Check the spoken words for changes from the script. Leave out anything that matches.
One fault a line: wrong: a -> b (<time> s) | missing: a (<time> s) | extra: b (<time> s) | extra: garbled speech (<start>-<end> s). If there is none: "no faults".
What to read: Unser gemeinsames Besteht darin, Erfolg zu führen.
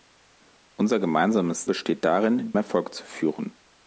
no faults